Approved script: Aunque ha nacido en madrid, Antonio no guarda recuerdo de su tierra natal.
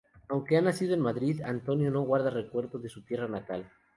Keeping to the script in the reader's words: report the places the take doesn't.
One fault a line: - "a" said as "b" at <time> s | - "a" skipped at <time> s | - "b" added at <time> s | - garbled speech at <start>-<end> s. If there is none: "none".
none